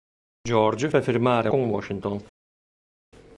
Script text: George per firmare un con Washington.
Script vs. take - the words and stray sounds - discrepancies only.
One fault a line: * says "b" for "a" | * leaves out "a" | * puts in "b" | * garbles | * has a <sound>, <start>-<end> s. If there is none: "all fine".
all fine